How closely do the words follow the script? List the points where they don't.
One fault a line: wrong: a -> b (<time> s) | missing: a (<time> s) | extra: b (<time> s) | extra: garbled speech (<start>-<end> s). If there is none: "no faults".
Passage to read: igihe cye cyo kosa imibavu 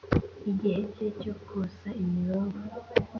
no faults